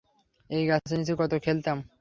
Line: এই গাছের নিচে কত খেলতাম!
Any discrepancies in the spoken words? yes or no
no